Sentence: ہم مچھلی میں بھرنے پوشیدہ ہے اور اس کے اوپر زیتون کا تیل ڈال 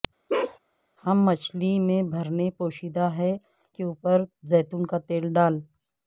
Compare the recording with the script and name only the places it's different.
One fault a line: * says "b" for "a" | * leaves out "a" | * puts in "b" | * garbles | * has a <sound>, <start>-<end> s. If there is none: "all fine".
* has a bark, 0.3-0.6 s
* leaves out "اور اس"